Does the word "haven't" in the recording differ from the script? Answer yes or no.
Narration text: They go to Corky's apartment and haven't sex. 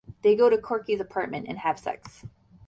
yes